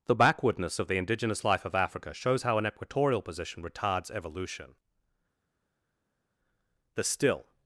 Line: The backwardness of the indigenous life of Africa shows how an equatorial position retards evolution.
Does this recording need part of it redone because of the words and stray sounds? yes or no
yes